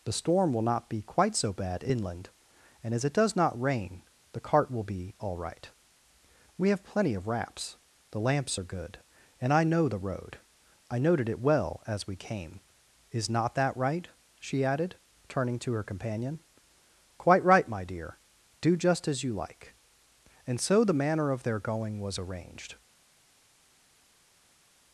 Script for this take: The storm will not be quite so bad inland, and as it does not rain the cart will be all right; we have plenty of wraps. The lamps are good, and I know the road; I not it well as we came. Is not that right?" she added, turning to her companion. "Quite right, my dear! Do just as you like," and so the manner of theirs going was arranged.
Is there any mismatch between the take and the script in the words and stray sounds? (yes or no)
yes